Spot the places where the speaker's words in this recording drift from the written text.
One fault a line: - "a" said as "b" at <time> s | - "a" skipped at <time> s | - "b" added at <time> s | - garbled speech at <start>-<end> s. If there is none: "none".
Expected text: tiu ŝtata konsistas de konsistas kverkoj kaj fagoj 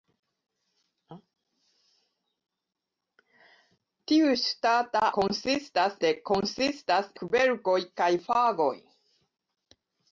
none